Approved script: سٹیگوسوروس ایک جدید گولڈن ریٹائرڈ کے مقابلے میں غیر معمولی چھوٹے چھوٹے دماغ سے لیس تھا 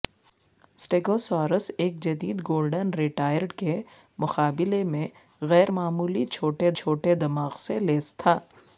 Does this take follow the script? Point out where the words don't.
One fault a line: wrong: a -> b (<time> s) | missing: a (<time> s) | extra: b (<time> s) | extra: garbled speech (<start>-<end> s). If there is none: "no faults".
no faults